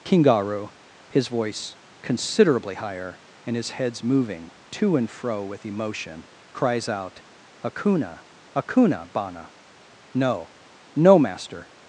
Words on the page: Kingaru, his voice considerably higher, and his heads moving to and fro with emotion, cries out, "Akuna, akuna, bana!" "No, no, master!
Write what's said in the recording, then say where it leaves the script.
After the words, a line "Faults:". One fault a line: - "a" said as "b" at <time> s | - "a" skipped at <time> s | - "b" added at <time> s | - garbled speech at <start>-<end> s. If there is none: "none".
Kingaru, his voice considerably higher, and his heads moving to and fro with emotion, cries out, "Akuna, akuna, bana!" "No, no, master!
Faults:
none